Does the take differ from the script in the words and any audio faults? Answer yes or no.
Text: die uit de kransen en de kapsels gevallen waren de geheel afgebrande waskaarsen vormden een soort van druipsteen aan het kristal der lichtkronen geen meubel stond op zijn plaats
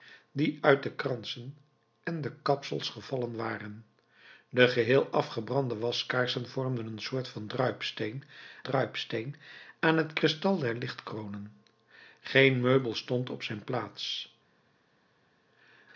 yes